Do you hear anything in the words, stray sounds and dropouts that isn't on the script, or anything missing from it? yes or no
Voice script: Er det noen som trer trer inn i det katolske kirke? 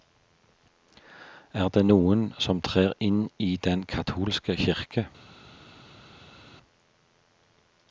yes